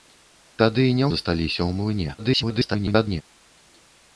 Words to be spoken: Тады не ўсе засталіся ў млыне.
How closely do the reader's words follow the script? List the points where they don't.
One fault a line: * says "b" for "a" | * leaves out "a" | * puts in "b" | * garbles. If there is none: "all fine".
* leaves out "ўсе"
* garbles